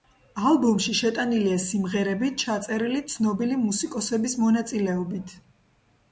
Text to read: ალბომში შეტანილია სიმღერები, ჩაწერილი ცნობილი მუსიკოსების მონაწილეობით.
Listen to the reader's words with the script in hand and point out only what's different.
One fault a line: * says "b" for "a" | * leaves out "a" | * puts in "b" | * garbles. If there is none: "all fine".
all fine